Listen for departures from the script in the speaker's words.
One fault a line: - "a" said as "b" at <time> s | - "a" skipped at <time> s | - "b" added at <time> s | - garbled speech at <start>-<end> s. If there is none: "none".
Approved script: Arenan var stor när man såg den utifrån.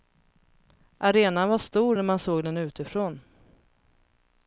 none